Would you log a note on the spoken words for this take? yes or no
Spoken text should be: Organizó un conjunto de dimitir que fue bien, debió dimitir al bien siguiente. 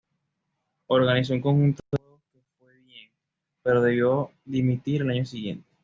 yes